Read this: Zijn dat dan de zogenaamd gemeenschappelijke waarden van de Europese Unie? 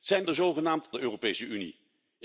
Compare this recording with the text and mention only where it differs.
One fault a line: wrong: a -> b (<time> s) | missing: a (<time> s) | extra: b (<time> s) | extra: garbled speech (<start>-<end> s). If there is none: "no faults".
missing: dat dan (0.2 s)
missing: gemeenschappelijke waarden van (0.9 s)